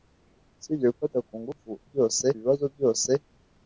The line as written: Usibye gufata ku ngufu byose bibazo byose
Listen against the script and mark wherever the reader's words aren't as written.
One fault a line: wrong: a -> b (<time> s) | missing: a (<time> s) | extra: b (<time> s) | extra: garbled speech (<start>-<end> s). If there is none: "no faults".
no faults